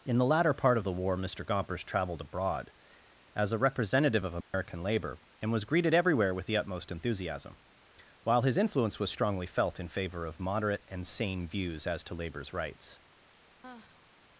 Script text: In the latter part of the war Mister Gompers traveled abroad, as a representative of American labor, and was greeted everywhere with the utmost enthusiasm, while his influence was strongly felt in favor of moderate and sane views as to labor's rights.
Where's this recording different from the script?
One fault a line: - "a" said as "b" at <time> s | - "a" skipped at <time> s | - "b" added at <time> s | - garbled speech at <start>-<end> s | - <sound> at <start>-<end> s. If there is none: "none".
- dropout at 4.4-4.5 s
- sigh at 13.6-14.1 s